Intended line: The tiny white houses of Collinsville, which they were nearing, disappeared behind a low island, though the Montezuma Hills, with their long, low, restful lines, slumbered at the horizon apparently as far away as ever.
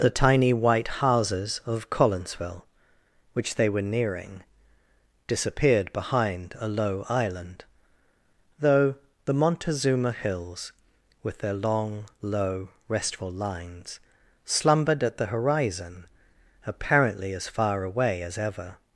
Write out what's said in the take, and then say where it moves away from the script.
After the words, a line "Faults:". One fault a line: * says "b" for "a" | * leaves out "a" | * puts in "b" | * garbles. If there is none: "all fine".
The tiny white houses of Collinsville, which they were nearing, disappeared behind a low island, though the Montezuma Hills, with their long, low, restful lines, slumbered at the horizon apparently as far away as ever.
Faults:
all fine